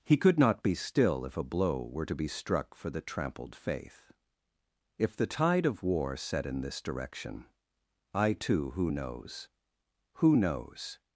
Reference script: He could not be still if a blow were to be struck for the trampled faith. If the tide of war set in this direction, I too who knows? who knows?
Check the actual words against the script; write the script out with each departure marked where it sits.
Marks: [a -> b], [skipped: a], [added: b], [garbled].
He could not be still if a blow were to be struck for the trampled faith. If the tide of war set in this direction, I too who knows? who knows?